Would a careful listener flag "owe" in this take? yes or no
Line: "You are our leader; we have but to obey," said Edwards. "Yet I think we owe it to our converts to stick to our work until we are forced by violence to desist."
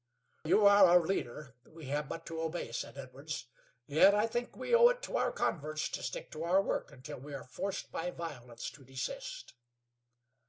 no